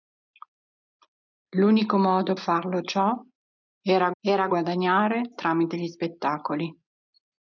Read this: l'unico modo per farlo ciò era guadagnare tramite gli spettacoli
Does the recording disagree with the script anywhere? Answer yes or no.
yes